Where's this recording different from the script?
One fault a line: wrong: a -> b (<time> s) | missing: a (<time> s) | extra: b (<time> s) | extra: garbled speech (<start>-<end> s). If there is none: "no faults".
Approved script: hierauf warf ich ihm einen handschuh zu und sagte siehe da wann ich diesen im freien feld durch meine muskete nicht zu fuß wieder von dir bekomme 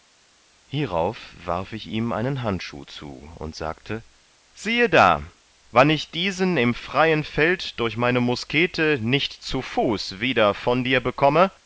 no faults